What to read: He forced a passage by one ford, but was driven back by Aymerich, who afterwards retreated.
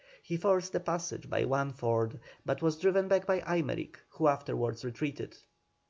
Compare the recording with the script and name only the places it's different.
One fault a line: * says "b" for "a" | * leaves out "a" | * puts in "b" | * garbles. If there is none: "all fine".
all fine